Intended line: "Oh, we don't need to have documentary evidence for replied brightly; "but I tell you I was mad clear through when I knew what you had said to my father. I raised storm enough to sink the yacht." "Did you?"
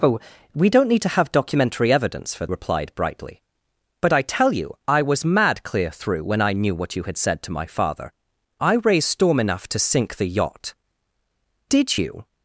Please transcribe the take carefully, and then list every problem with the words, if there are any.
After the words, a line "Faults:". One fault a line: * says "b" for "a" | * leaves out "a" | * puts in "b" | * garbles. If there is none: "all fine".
"Oh, we don't need to have documentary evidence for replied brightly; "but I tell you I was mad clear through when I knew what you had said to my father. I raised storm enough to sink the yacht." "Did you?"
Faults:
all fine